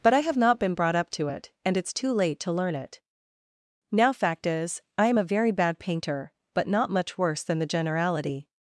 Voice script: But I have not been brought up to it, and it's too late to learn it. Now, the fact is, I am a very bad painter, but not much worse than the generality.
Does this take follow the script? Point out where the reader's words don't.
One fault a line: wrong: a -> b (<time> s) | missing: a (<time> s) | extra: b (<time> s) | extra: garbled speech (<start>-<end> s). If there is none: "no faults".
missing: the (4.1 s)